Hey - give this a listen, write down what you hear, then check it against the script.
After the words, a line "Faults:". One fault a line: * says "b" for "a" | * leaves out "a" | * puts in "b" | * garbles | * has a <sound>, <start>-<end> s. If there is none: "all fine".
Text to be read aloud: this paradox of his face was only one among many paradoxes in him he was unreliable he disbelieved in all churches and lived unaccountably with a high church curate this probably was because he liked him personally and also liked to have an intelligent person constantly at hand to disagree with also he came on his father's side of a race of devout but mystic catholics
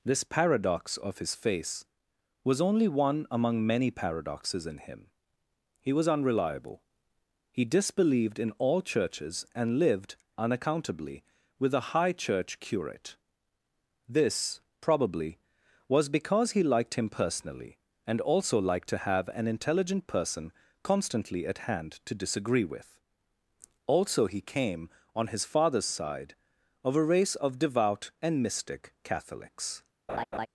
this paradox of his face was only one among many paradoxes in him he was unreliable he disbelieved in all churches and lived unaccountably with a high church curate this probably was because he liked him personally and also liked to have an intelligent person constantly at hand to disagree with also he came on his father's side of a race of devout and mystic catholics
Faults:
* says "and" for "but"
* has a laugh, 30.1-30.5 s